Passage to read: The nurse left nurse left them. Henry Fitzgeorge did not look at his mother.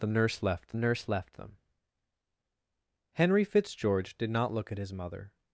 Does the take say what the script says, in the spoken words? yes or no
yes